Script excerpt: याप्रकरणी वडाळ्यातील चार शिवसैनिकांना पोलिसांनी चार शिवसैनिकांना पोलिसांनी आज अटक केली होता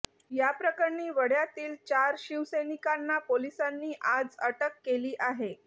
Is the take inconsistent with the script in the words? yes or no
yes